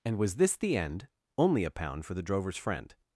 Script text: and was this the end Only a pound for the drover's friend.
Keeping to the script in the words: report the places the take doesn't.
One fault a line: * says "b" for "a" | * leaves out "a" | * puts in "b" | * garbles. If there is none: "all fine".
all fine